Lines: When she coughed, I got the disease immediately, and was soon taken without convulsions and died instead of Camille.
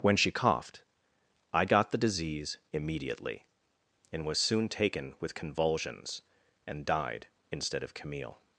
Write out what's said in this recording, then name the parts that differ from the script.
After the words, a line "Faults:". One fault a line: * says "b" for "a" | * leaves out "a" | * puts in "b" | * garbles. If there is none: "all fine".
When she coughed, I got the disease immediately, and was soon taken with convulsions and died instead of Camille.
Faults:
* says "with" for "without"